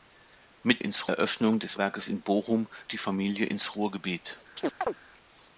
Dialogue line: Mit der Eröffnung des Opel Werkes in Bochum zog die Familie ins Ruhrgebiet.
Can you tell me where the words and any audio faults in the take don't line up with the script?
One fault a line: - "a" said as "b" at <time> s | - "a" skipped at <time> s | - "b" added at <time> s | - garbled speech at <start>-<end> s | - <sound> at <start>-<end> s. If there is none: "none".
- "der" said as "ins" at 0.8 s
- "Opel" skipped at 1.8 s
- "zog" skipped at 2.7 s
- chirp at 4.6-5.0 s